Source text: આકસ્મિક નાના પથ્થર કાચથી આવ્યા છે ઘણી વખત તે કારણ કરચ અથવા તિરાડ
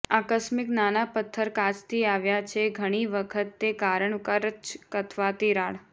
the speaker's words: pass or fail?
pass